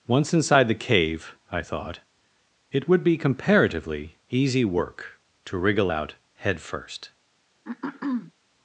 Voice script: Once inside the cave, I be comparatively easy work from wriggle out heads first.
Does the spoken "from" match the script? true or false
false